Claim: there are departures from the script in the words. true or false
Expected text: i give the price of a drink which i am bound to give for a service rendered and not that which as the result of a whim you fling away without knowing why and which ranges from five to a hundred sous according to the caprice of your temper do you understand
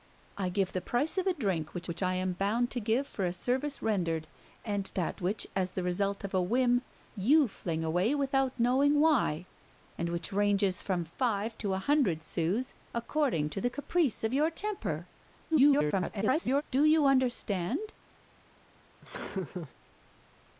true